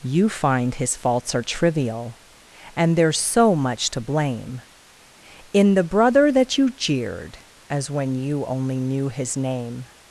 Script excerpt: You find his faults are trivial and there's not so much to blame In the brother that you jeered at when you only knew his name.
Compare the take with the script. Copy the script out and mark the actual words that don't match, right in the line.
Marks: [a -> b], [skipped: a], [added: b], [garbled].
You find his faults are trivial and there's [skipped: not] so much to blame In the brother that you jeered [at -> as] when you only knew his name.